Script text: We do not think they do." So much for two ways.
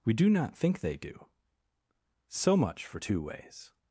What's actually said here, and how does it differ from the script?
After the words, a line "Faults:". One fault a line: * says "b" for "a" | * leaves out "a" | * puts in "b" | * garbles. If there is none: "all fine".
We do not think they do." So much for two ways.
Faults:
all fine